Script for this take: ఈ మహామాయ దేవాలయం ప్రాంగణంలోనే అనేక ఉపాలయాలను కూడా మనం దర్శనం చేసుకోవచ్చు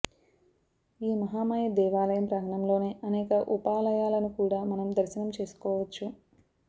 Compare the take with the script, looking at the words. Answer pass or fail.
pass